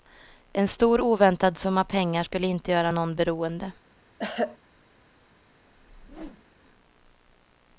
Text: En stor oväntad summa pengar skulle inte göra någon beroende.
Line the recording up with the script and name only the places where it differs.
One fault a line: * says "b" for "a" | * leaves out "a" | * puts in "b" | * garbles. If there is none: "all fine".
all fine